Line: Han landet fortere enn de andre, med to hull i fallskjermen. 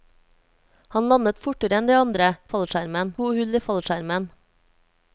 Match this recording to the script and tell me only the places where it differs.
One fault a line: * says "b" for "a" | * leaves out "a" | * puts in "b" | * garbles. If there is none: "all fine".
* says "fallskjermen" for "med"